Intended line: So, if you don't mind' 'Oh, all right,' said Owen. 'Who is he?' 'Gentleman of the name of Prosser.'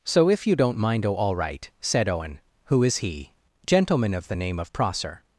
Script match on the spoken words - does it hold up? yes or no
yes